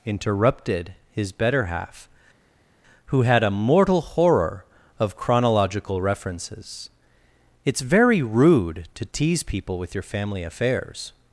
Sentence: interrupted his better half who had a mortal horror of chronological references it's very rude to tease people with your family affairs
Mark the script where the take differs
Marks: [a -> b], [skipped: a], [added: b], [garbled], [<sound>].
interrupted his better half who had a mortal horror of chronological references it's very rude to tease people with your family affairs